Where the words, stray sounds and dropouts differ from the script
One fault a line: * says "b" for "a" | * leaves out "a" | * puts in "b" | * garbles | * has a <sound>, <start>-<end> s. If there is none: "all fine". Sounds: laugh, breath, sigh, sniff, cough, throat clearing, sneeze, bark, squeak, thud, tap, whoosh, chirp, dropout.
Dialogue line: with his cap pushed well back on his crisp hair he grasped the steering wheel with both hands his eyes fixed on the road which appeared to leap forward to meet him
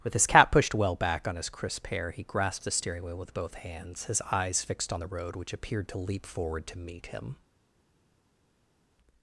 all fine